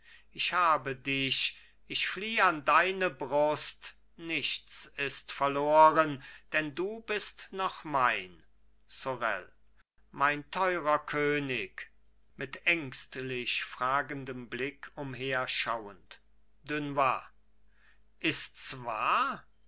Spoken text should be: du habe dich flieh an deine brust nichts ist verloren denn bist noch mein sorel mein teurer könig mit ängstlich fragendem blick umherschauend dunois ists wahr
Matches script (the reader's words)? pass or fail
fail